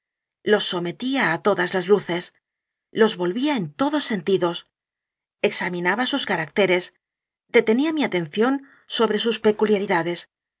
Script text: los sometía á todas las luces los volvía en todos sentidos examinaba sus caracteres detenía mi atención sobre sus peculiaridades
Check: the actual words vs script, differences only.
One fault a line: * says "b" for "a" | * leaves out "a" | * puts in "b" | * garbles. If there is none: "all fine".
all fine